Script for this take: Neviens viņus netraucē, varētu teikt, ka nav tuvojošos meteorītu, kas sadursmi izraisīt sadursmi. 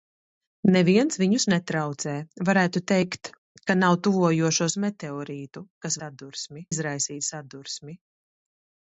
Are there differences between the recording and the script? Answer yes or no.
no